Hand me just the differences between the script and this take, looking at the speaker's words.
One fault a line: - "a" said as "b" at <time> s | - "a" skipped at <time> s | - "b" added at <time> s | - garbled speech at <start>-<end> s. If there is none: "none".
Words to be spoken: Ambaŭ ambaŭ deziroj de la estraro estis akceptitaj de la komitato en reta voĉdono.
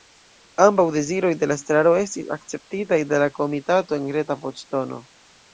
- "ambaŭ" skipped at 0.8 s